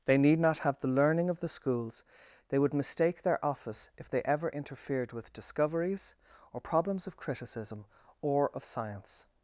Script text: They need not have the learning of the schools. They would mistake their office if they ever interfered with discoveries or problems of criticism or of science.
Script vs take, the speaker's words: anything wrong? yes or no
no